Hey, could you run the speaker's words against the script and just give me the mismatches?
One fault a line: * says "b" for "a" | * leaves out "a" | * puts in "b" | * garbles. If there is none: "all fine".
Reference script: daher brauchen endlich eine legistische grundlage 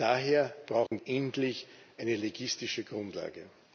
all fine